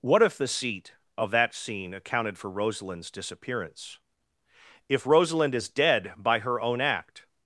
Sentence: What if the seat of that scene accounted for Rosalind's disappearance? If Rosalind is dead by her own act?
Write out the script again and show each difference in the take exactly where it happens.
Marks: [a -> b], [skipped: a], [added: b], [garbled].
What if the seat of that scene accounted for Rosalind's disappearance? If Rosalind is dead by her own act?